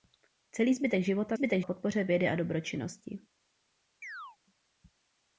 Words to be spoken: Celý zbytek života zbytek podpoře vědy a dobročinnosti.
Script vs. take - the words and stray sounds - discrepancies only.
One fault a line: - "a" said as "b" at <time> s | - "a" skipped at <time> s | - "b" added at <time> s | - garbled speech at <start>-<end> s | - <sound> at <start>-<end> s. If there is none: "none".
- chirp at 4.0-4.4 s